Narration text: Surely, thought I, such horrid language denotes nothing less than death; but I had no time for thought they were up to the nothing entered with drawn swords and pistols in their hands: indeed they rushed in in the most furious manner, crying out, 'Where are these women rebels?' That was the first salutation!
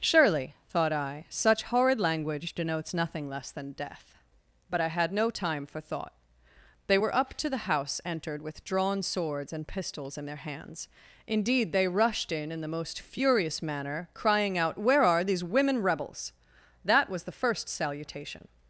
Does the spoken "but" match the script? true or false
true